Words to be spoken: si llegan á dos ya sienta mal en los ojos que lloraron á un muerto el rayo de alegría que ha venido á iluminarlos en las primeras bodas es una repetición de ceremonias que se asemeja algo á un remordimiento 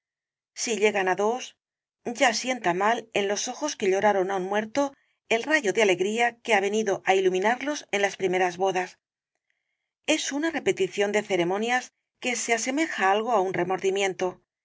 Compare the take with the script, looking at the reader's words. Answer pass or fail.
pass